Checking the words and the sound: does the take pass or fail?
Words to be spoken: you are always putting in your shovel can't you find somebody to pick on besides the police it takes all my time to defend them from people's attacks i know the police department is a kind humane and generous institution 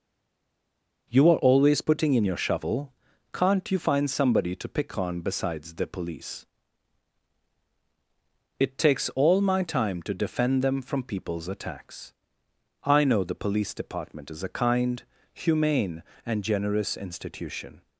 pass